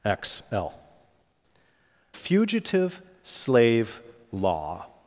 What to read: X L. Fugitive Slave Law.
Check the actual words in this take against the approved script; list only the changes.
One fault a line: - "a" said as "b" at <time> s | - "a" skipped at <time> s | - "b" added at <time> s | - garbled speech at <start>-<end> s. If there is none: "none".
none